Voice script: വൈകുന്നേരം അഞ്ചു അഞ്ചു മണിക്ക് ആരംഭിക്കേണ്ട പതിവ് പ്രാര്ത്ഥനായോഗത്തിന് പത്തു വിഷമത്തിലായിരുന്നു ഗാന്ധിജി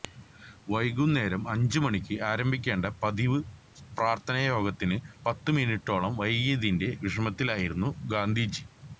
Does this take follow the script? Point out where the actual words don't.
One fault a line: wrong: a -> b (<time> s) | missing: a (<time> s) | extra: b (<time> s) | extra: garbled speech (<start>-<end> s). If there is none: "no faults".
missing: അഞ്ചു (1.8 s)
extra: മിനിറ്റോളം വൈകിയതിന്റെ (5.5 s)